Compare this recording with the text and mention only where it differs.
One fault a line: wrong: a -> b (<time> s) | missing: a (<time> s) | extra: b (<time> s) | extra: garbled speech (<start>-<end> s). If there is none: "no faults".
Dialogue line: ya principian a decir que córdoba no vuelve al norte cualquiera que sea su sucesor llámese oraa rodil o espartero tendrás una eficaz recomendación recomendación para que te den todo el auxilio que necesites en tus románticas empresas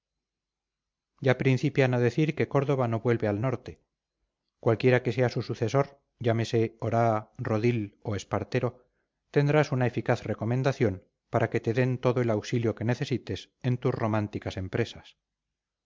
missing: recomendación (10.9 s)